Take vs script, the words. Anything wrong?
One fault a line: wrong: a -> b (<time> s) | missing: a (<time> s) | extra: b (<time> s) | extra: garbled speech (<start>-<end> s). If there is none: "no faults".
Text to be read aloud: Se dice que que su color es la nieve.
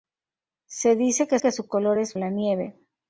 no faults